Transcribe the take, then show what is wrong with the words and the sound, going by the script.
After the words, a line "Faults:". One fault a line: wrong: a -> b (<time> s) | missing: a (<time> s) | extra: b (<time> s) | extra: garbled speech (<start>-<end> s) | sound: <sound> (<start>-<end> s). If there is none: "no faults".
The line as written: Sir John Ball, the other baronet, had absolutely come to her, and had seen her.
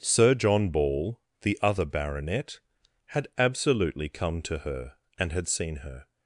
Sir John Ball, the other baronet, had absolutely come to her, and had seen her.
Faults:
no faults